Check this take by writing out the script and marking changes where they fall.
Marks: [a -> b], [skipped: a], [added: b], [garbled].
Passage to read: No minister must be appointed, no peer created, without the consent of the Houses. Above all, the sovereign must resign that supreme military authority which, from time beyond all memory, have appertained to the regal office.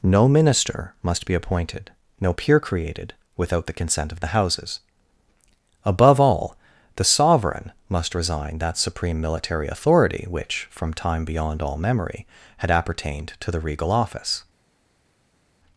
No minister must be appointed, no peer created, without the consent of the Houses. Above all, the sovereign must resign that supreme military authority which, from time beyond all memory, [have -> had] appertained to the regal office.